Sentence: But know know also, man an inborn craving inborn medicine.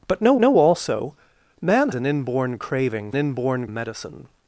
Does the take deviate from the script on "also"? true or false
false